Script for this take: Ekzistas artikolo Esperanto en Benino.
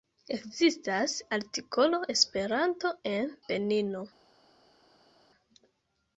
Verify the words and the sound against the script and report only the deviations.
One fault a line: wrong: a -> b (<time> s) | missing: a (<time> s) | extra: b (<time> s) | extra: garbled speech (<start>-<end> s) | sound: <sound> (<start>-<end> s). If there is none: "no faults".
no faults